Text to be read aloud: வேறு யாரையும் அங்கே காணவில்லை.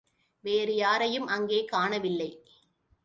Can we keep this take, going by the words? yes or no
yes